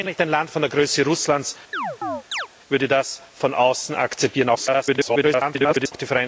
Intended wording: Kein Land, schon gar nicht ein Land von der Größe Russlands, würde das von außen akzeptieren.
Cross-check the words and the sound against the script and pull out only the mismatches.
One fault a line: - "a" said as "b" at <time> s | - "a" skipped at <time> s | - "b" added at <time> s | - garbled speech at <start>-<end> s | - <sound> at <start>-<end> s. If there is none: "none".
- "Land schon gar" skipped at 0.1 s
- chirp at 1.7-2.5 s
- garbled speech at 4.6-5.9 s